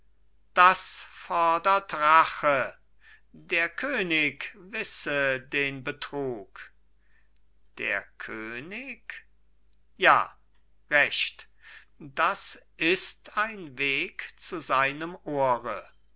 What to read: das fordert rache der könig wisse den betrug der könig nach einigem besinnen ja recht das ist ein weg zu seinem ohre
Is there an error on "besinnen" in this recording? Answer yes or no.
yes